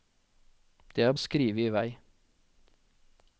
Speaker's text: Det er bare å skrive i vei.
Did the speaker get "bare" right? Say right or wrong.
wrong